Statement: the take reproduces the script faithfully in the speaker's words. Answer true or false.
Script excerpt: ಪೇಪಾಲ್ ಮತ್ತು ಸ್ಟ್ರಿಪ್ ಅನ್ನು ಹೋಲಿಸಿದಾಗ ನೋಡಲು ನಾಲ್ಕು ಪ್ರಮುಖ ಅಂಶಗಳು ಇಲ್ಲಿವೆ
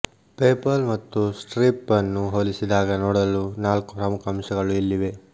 true